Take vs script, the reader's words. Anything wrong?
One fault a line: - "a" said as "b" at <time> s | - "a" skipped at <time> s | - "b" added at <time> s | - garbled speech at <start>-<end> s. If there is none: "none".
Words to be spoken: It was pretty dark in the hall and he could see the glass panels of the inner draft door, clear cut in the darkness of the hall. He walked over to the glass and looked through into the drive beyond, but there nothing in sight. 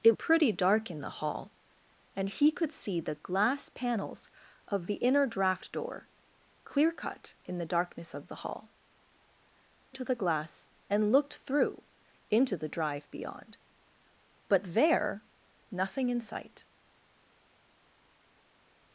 - "was" skipped at 0.1 s
- "He walked over" skipped at 8.7 s